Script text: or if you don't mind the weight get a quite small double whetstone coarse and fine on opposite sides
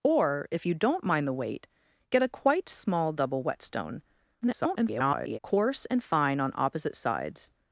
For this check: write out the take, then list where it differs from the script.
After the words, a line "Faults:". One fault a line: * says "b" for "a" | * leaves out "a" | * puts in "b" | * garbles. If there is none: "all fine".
or if you don't mind the weight get a quite small double whetstone [garbled] coarse and fine on opposite sides
Faults:
* garbles